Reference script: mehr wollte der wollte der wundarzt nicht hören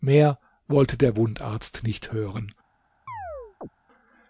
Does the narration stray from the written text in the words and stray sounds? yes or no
yes